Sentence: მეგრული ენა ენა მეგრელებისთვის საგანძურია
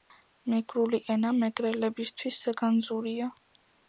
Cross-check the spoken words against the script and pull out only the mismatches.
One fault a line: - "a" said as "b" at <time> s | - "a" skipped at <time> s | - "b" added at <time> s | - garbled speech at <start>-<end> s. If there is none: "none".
- "ენა" skipped at 1.3 s